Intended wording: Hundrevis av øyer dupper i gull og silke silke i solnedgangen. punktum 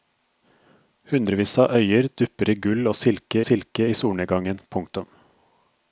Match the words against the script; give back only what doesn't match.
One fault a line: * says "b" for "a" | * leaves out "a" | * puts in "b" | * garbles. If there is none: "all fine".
all fine